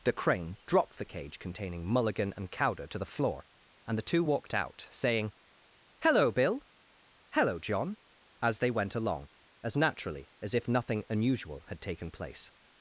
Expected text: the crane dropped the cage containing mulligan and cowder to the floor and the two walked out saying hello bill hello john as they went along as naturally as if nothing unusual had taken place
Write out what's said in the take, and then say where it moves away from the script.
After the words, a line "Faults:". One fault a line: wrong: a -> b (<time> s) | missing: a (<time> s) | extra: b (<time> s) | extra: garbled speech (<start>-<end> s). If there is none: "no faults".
the crane dropped the cage containing mulligan and cowder to the floor and the two walked out saying hello bill hello john as they went along as naturally as if nothing unusual had taken place
Faults:
no faults